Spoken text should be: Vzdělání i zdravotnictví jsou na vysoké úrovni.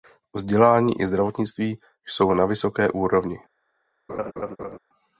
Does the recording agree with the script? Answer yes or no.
yes